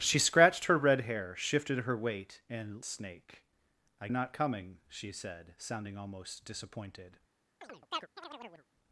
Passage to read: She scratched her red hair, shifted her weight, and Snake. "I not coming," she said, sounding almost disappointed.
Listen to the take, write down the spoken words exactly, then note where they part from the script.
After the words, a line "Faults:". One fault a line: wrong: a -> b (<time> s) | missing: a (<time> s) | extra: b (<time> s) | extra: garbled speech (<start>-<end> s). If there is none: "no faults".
She scratched her red hair, shifted her weight, and Snake. "I not coming," she said, sounding almost disappointed.
Faults:
no faults